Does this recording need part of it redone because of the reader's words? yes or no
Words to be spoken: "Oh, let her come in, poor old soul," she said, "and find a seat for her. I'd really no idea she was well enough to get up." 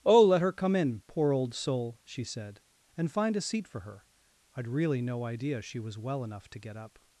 no